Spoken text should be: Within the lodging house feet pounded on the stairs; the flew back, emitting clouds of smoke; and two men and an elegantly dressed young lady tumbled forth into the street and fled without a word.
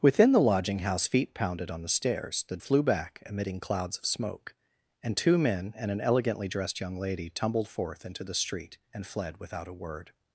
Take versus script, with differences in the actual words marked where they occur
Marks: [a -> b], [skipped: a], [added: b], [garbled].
Within the lodging house feet pounded on the stairs; the flew back, emitting clouds of smoke; and two men and an elegantly dressed young lady tumbled forth into the street and fled without a word.